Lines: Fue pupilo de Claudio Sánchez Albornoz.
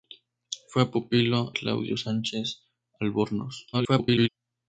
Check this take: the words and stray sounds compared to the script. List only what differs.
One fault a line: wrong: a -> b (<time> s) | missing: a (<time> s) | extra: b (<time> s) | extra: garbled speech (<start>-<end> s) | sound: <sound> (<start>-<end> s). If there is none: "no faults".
missing: de (1.5 s)
extra: garbled speech (3.7-4.3 s)